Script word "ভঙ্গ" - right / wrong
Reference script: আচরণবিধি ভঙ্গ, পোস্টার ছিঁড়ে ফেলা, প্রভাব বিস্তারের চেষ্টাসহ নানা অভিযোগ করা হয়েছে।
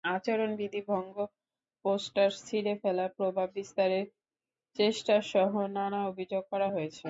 right